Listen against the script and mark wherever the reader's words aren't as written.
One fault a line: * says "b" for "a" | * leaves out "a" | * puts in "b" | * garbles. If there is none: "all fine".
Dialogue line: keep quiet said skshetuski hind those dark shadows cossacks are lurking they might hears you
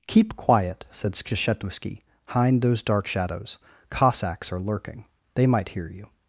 * says "hear" for "hears"